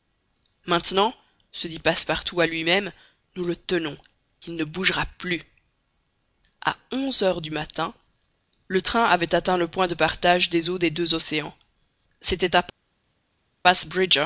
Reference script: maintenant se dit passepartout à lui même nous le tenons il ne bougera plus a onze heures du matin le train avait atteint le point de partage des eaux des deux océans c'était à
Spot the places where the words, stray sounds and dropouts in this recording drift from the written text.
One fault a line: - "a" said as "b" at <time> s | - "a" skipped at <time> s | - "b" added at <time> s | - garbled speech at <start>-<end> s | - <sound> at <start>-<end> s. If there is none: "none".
none